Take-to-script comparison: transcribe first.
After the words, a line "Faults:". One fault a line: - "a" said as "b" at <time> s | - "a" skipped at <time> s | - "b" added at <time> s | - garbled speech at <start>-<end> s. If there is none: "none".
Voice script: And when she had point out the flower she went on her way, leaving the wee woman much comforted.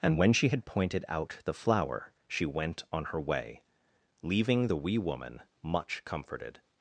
And when she had pointed out the flower she went on her way, leaving the wee woman much comforted.
Faults:
- "point" said as "pointed" at 0.6 s